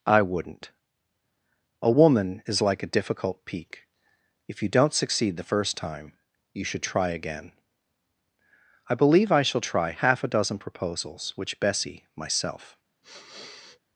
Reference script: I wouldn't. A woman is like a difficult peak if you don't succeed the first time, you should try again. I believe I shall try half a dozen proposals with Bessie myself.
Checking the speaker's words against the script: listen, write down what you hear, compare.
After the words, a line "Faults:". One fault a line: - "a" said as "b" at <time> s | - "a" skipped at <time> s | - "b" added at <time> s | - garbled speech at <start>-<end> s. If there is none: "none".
I wouldn't. A woman is like a difficult peak if you don't succeed the first time, you should try again. I believe I shall try half a dozen proposals which Bessie myself.
Faults:
- "with" said as "which" at 11.3 s